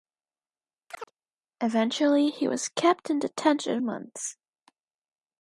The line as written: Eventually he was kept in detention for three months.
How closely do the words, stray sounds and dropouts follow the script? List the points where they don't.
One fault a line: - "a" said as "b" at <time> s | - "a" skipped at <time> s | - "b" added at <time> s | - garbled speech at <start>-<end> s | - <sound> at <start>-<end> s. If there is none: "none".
- chirp at 0.9-1.1 s
- "for three" skipped at 3.8 s